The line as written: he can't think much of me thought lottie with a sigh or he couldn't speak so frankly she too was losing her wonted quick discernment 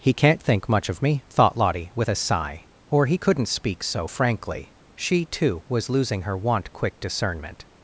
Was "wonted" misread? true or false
true